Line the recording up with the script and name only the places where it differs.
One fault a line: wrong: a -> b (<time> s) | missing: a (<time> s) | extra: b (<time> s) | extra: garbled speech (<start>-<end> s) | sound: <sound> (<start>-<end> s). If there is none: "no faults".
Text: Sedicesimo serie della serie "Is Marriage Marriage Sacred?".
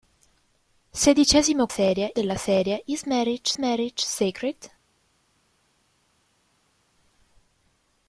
no faults